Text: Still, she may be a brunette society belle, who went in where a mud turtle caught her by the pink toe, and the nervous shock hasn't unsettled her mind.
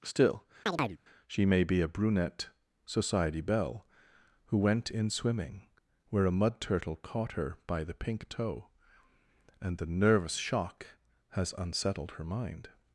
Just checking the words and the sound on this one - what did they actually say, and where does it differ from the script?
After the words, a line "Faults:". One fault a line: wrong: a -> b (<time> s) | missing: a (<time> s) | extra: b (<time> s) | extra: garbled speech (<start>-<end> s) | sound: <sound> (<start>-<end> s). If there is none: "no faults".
Still, she may be a brunette society belle, who went in swimming where a mud turtle caught her by the pink toe, and the nervous shock has unsettled her mind.
Faults:
sound: chirp (0.7-1.0 s)
extra: swimming (5.1 s)
wrong: hasn't -> has (11.3 s)